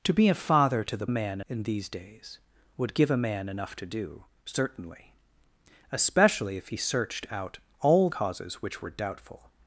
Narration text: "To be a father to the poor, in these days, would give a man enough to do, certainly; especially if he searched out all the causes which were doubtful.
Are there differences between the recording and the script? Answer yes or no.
yes